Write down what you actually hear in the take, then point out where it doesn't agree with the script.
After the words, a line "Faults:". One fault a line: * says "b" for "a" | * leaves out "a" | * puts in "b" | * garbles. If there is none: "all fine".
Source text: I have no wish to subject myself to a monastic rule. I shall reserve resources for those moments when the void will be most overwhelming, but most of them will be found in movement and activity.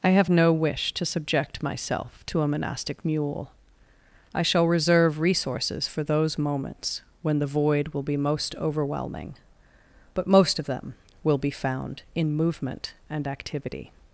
I have no wish to subject myself to a monastic mule. I shall reserve resources for those moments when the void will be most overwhelming, but most of them will be found in movement and activity.
Faults:
* says "mule" for "rule"